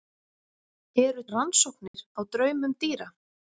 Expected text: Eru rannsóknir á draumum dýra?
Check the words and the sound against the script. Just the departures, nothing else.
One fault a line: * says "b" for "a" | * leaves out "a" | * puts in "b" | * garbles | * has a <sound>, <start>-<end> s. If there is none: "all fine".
* has a dropout, 1.9-1.9 s